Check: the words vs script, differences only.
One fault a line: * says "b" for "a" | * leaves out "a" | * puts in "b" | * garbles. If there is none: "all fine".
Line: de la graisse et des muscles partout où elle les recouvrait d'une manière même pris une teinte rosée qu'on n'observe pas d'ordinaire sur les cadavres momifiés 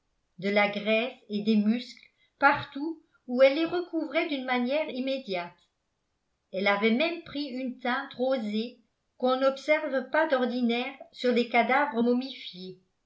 * puts in "immédiate elle avait"